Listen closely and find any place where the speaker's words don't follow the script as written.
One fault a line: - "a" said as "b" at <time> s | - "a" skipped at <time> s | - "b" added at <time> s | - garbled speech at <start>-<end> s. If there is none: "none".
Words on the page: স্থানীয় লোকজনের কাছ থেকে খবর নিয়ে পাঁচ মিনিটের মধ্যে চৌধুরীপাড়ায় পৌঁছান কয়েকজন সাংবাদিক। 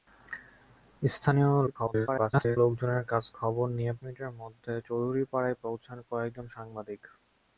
- garbled speech at 1.7-2.6 s
- "থেকে" skipped at 3.2 s
- "পাঁচ" skipped at 3.9 s